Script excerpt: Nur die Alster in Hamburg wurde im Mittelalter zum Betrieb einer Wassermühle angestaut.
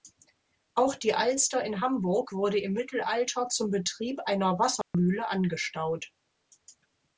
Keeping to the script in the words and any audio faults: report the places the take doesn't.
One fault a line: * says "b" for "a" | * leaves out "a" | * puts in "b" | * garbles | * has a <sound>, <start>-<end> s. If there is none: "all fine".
* says "Auch" for "Nur"
* has a dropout, 4.8-4.9 s